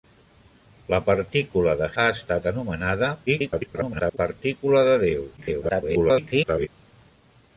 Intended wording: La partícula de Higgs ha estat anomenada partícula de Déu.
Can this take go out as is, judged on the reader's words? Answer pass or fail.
fail